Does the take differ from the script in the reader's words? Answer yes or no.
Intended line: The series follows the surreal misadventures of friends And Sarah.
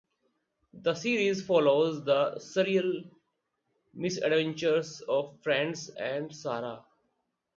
no